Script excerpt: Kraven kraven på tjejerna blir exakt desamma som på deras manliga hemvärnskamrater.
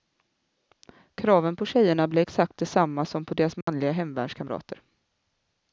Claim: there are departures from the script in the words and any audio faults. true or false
true